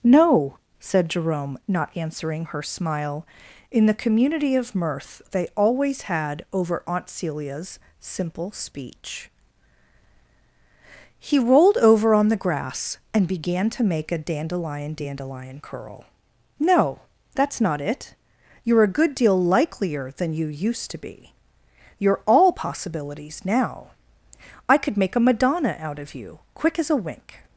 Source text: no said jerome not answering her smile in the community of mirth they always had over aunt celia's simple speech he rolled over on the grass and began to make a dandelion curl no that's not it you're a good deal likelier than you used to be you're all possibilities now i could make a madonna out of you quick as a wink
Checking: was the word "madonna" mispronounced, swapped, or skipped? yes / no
no